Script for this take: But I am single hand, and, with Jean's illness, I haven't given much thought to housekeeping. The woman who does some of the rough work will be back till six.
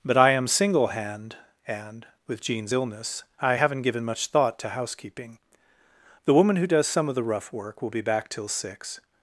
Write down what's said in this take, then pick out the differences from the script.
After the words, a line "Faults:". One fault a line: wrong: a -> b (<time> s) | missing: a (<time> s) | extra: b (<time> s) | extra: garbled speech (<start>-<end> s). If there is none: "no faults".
But I am single hand, and, with Jean's illness, I haven't given much thought to housekeeping. The woman who does some of the rough work will be back till six.
Faults:
no faults